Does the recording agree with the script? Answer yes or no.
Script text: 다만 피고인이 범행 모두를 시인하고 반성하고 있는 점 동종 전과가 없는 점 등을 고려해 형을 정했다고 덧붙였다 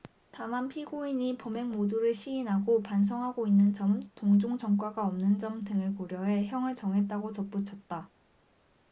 yes